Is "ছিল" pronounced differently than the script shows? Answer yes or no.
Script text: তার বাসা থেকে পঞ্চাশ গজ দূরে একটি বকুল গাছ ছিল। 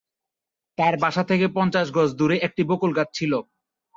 no